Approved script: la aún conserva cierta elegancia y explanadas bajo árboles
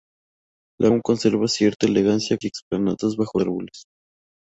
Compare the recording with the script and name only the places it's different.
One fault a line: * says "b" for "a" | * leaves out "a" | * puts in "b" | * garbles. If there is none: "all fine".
all fine